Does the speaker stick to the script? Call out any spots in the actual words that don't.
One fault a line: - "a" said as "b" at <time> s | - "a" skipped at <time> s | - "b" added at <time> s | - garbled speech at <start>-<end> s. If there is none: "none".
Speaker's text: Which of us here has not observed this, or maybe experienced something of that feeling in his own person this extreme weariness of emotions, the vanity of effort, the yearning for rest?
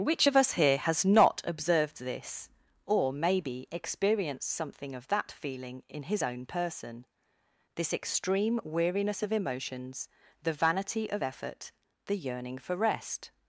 none